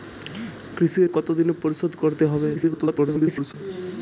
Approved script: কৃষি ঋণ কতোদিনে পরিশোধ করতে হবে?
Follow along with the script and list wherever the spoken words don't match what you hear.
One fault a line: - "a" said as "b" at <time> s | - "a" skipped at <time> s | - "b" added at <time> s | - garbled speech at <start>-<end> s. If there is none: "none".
- "ঋণ" skipped at 1.0 s
- garbled speech at 2.5-3.5 s